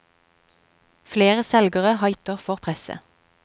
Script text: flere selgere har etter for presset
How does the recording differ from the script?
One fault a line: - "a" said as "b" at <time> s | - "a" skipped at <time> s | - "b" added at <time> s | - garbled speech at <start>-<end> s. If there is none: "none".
none